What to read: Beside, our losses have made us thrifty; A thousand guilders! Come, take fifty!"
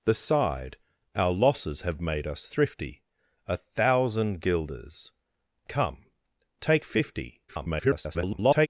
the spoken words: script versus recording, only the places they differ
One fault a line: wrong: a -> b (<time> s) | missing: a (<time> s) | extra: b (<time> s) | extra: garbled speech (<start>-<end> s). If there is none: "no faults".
extra: garbled speech (7.5-8.7 s)